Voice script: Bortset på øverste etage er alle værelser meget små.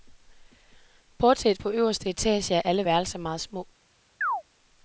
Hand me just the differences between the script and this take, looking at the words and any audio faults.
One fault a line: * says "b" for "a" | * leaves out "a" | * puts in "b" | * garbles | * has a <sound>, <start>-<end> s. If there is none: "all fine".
* has a chirp, 4.2-4.4 s